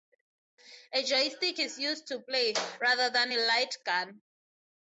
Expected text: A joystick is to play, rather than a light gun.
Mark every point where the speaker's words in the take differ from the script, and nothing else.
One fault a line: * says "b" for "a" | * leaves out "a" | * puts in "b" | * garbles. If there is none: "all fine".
* puts in "used"